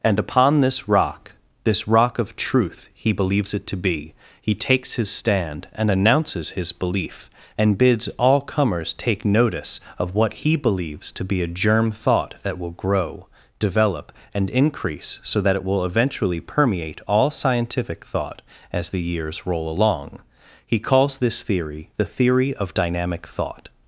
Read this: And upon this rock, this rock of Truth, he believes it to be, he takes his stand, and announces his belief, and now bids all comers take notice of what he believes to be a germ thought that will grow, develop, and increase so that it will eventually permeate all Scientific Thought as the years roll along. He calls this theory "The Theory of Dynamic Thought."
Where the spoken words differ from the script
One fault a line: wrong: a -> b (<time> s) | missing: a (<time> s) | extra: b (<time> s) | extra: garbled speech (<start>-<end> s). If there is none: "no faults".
missing: now (7.8 s)